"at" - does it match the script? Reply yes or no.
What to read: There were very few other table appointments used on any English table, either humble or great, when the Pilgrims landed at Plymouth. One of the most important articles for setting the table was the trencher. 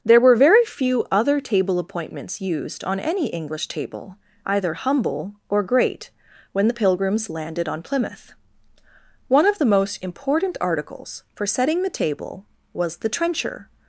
no